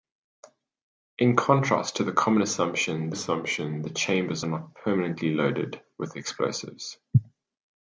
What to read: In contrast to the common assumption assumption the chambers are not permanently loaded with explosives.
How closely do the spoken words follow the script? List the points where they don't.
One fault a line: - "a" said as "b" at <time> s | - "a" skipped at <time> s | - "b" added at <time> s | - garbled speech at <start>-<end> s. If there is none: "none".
none